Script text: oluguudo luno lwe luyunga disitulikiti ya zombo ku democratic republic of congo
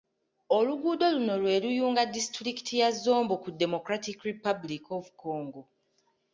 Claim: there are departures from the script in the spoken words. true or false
false